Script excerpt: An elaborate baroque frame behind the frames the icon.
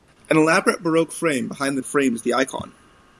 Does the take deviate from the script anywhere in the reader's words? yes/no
no